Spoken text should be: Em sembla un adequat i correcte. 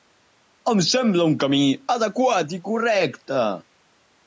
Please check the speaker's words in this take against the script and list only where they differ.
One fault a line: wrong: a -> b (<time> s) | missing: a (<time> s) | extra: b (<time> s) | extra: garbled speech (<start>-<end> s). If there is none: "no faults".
extra: camí (1.4 s)